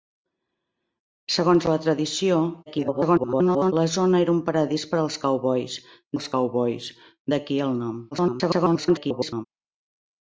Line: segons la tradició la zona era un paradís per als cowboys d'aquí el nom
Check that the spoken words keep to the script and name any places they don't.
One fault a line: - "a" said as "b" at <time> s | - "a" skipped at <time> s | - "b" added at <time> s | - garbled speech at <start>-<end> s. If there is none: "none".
- garbled speech at 2.7-3.7 s
- "als cowboys" added at 6.1 s
- garbled speech at 8.1-9.5 s